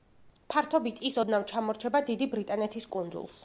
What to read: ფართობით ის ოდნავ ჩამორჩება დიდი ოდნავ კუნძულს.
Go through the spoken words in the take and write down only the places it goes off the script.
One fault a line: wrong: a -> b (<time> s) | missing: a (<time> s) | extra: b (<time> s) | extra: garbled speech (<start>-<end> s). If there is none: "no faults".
wrong: ოდნავ -> ბრიტანეთის (2.4 s)